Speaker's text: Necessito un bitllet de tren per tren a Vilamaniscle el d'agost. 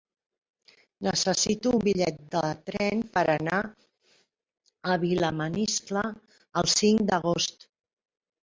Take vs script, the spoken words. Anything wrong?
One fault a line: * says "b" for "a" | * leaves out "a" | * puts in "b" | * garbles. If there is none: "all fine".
* says "anar" for "tren"
* puts in "cinc"